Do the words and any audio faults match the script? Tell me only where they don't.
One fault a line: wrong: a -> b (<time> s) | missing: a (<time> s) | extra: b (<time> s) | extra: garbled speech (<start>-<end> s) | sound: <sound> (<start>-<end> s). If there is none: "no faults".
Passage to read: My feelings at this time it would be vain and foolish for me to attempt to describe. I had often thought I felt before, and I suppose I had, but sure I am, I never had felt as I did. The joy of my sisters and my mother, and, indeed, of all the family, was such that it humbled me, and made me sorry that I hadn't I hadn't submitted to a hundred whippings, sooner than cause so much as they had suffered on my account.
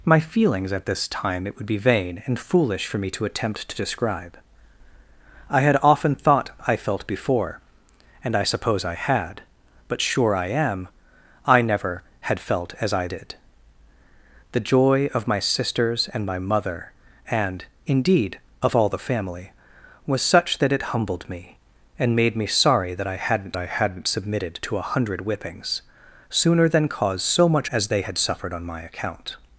no faults